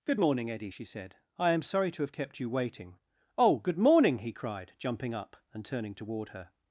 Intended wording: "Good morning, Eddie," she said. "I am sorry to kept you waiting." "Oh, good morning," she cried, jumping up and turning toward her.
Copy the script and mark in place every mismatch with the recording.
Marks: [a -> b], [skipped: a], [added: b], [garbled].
"Good morning, Eddie," she said. "I am sorry to [added: have] kept you waiting." "Oh, good morning," [she -> he] cried, jumping up and turning toward her.